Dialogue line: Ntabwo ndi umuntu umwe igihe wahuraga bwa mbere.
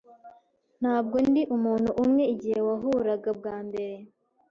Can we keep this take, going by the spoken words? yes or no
yes